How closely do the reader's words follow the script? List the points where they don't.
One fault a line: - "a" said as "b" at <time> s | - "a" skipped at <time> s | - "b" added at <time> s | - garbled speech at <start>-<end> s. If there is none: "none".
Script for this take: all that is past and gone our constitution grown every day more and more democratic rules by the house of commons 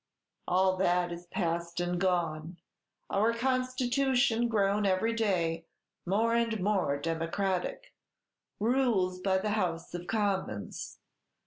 none